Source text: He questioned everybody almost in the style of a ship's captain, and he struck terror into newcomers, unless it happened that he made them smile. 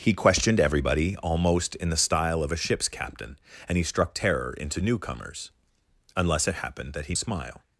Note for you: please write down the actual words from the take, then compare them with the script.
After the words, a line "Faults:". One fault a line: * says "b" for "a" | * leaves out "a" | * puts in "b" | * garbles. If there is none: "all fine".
He questioned everybody almost in the style of a ship's captain, and he struck terror into newcomers, unless it happened that he smile.
Faults:
* leaves out "made them"